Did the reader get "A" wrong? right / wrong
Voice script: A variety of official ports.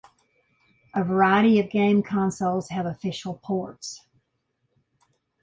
right